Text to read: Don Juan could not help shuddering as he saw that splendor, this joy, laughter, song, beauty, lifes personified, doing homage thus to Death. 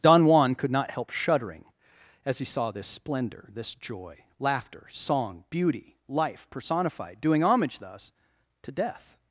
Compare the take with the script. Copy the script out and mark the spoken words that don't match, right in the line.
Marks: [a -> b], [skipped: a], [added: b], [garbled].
Don Juan could not help shuddering as he saw [that -> this] splendor, this joy, laughter, song, beauty, [lifes -> life] personified, doing homage thus to Death.